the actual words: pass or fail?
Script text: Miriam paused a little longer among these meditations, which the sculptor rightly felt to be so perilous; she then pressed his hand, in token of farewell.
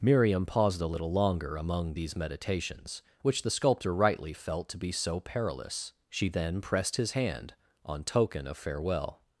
fail